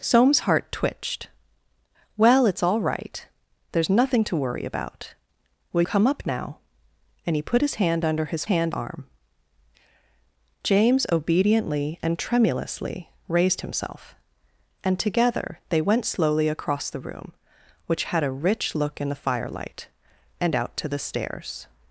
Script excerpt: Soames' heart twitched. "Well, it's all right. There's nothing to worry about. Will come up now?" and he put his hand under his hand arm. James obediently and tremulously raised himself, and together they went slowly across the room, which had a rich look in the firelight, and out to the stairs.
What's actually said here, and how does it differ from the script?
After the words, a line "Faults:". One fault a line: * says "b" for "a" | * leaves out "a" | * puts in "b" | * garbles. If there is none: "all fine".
Soames' heart twitched. "Well, it's all right. There's nothing to worry about. Will come up now?" and he put his hand under his hand arm. James obediently and tremulously raised himself, and together they went slowly across the room, which had a rich look in the firelight, and out to the stairs.
Faults:
all fine